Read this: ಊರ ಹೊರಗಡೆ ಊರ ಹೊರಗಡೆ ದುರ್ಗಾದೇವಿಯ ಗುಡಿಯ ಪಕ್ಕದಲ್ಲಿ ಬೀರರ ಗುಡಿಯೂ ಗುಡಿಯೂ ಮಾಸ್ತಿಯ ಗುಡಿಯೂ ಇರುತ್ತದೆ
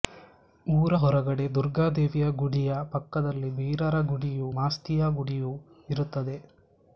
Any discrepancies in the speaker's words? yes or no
yes